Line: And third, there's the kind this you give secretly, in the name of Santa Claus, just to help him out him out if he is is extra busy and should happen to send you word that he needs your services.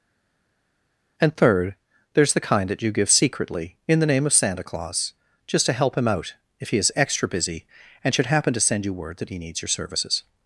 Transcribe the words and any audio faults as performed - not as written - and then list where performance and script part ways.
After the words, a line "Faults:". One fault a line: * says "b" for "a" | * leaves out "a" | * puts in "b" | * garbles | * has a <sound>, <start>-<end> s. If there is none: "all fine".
And third, there's the kind that you give secretly, in the name of Santa Claus, just to help him out if he is extra busy and should happen to send you word that he needs your services.
Faults:
* says "that" for "this"
* leaves out "him out"
* leaves out "is"